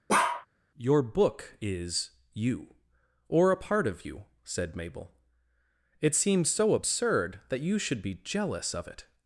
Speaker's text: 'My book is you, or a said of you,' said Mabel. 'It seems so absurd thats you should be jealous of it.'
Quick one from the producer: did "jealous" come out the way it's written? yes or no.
yes